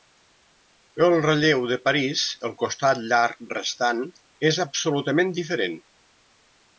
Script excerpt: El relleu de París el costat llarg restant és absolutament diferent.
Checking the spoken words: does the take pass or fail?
pass